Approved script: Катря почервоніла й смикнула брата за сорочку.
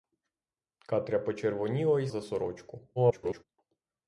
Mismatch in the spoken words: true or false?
true